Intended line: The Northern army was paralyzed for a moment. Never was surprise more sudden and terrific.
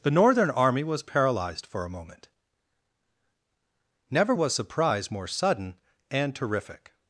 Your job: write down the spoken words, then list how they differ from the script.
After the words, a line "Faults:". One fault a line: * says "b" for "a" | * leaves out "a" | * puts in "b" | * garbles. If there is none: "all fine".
The Northern army was paralyzed for a moment. Never was surprise more sudden and terrific.
Faults:
all fine